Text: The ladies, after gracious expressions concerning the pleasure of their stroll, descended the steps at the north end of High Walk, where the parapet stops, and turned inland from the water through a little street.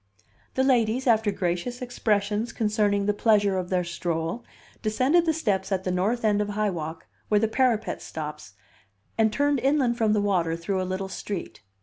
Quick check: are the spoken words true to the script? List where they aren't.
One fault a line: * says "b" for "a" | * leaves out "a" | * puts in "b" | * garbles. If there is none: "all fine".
all fine